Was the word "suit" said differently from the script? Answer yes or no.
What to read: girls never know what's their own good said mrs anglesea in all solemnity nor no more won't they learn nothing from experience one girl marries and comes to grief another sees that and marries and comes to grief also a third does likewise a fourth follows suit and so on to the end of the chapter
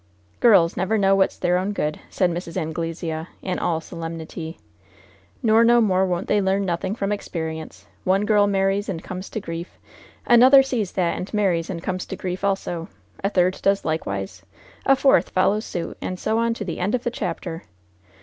no